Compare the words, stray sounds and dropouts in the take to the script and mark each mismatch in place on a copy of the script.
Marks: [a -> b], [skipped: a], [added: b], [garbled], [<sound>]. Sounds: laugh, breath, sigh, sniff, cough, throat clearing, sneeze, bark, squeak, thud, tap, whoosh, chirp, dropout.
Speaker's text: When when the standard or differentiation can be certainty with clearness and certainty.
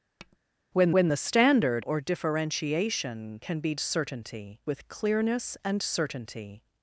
[tap] When when the standard or differentiation can be certainty with clearness and certainty.